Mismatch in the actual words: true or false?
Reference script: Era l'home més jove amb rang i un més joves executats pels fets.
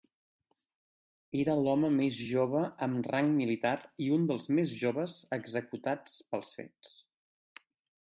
true